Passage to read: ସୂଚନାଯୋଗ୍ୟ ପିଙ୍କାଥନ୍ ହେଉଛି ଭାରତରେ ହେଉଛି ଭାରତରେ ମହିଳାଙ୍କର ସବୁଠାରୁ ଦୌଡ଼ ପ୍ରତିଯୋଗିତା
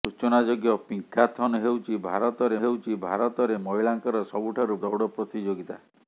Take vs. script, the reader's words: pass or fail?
pass